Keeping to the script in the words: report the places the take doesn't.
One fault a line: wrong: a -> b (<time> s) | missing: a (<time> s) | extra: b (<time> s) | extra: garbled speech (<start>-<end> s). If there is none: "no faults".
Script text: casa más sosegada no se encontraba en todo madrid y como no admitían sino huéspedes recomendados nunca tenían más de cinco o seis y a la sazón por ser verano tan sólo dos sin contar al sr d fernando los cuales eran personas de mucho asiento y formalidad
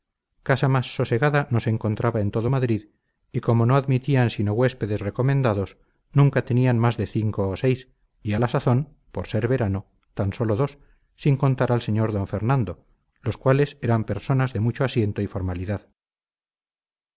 no faults